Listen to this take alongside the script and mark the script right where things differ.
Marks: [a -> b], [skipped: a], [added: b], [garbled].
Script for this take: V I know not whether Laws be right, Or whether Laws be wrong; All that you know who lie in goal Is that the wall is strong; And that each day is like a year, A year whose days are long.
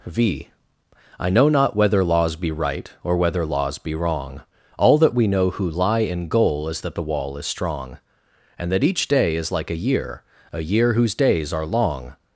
V I know not whether Laws be right, Or whether Laws be wrong; All that [you -> we] know who lie in goal Is that the wall is strong; And that each day is like a year, A year whose days are long.